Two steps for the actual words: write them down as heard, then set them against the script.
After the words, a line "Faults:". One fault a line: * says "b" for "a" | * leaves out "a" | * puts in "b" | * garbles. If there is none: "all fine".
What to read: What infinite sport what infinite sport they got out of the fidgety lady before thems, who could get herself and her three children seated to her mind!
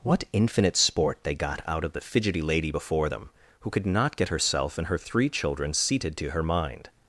What infinite sport they got out of the fidgety lady before them, who could not get herself and her three children seated to her mind!
Faults:
* leaves out "what infinite sport"
* says "them" for "thems"
* puts in "not"